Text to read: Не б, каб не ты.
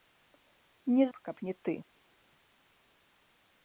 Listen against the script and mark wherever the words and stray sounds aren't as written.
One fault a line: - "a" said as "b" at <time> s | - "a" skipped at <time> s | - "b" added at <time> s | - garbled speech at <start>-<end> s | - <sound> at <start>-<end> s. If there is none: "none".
none